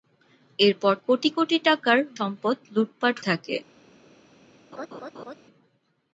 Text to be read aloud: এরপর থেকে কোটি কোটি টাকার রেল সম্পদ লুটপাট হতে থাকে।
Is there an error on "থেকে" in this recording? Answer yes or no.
yes